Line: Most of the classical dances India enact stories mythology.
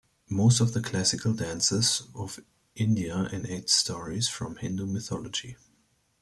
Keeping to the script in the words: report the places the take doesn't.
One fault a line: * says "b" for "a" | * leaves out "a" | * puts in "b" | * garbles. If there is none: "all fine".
* puts in "of"
* puts in "from Hindu"